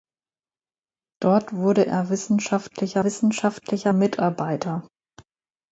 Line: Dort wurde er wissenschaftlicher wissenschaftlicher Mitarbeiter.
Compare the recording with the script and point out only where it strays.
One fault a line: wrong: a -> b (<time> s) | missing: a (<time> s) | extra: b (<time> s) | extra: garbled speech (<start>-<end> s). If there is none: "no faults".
no faults